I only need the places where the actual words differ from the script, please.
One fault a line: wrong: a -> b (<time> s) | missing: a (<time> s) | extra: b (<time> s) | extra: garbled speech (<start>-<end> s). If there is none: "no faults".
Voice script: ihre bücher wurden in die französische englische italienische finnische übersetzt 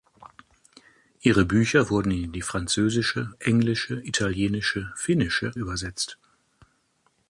no faults